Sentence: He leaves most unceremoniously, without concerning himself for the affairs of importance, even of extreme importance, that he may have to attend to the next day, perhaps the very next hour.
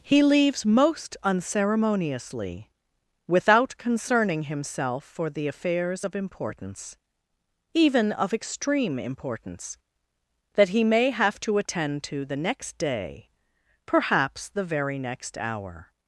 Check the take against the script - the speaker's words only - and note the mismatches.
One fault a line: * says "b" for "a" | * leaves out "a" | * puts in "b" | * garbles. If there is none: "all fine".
all fine